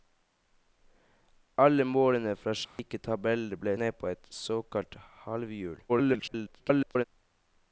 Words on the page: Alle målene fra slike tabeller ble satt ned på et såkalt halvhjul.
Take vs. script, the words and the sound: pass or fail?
fail